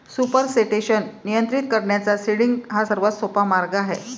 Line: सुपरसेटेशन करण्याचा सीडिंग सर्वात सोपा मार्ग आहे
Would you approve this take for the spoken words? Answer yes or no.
no